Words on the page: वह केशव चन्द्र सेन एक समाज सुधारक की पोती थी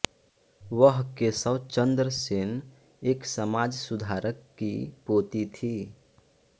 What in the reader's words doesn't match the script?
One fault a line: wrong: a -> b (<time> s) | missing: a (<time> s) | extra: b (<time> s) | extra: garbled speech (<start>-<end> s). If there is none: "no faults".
no faults